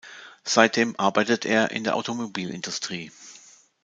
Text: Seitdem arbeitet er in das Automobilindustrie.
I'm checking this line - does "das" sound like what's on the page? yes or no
no